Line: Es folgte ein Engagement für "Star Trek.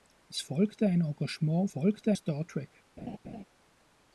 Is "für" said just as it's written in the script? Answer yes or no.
no